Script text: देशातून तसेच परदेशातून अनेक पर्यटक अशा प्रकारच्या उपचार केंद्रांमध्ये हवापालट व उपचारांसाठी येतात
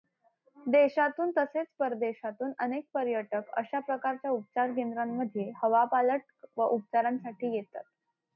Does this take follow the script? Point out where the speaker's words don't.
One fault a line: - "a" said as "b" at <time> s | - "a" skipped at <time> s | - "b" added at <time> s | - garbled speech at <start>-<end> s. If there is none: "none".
none